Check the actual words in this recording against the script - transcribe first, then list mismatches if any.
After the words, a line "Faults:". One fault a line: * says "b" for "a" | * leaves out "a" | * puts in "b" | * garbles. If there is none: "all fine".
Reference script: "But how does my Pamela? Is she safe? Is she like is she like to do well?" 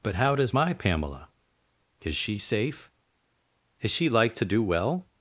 "But how does my Pamela? Is she safe? Is she like to do well?"
Faults:
* leaves out "is she like"